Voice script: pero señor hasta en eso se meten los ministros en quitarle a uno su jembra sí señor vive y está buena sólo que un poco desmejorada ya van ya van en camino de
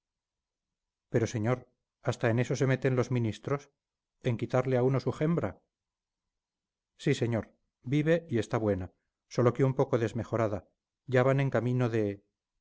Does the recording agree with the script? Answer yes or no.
no